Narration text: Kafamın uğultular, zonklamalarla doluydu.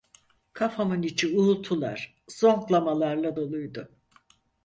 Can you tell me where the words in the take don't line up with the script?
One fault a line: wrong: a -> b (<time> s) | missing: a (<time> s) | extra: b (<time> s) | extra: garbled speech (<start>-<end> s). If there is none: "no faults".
extra: içi (1.0 s)